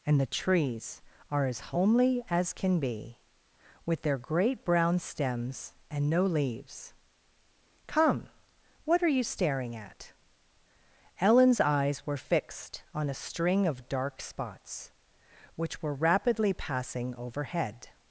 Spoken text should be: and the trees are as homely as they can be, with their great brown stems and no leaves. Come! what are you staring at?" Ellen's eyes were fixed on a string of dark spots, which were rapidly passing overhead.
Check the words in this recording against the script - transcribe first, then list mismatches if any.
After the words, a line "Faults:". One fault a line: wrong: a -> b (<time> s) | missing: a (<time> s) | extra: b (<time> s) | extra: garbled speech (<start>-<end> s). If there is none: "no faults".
and the trees are as homely as can be, with their great brown stems and no leaves. Come! what are you staring at?" Ellen's eyes were fixed on a string of dark spots, which were rapidly passing overhead.
Faults:
missing: they (2.5 s)